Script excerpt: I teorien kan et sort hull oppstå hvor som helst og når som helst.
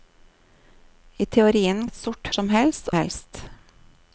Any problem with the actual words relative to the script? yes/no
yes